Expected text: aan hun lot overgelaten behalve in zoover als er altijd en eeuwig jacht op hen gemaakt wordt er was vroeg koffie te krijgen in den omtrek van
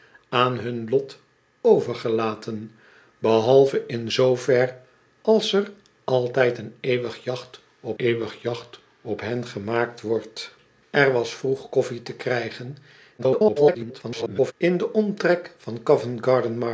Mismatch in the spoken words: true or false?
true